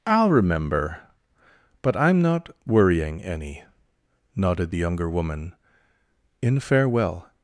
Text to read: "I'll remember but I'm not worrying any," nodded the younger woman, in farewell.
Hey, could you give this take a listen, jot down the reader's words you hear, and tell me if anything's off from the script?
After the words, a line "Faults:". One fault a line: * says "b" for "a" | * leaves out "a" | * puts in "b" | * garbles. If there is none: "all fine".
"I'll remember but I'm not worrying any," nodded the younger woman, in farewell.
Faults:
all fine